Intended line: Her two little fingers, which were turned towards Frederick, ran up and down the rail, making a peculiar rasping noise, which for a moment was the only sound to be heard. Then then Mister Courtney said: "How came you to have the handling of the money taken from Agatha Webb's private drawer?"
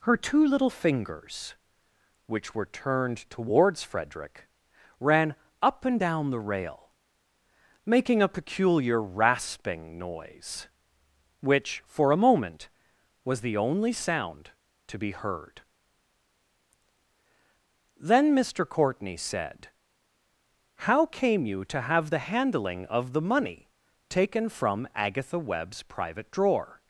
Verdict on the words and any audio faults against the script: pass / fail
fail